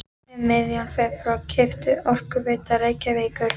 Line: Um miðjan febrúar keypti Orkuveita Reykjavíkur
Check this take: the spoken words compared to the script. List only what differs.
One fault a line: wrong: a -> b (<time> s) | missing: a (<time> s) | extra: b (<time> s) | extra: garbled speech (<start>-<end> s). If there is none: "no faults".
no faults